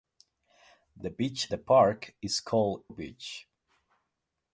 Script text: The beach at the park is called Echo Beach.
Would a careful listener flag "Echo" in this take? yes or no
yes